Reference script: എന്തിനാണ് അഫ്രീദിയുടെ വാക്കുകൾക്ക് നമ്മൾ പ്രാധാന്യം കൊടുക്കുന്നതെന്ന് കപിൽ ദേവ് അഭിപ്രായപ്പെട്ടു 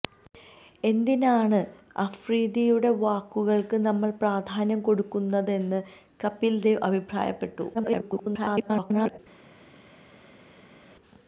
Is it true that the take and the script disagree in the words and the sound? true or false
true